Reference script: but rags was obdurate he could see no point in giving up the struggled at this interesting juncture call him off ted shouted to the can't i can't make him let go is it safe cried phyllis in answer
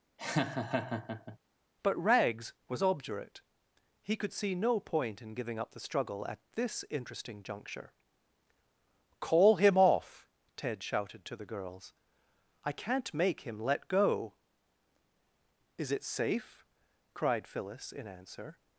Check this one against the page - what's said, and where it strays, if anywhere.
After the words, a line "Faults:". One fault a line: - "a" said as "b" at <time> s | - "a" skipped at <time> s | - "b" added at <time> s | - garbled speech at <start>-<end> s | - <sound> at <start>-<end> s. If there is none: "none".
but rags was obdurate he could see no point in giving up the struggle at this interesting juncture call him off ted shouted to the girls i can't make him let go is it safe cried phyllis in answer
Faults:
- laugh at 0.2-1.4 s
- "struggled" said as "struggle" at 5.8 s
- "can't" said as "girls" at 11.5 s